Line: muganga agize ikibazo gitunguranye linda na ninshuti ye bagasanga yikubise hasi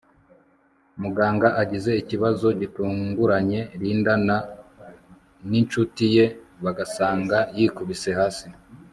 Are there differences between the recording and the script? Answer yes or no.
no